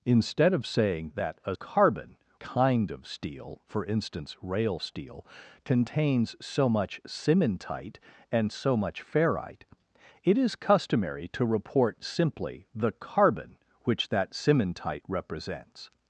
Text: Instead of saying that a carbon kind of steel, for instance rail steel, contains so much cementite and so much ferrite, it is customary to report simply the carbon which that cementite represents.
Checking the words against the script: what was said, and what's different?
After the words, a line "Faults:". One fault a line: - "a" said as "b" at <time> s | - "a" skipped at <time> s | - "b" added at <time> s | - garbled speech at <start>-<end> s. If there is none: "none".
Instead of saying that a carbon kind of steel, for instance rail steel, contains so much cementite and so much ferrite, it is customary to report simply the carbon which that cementite represents.
Faults:
none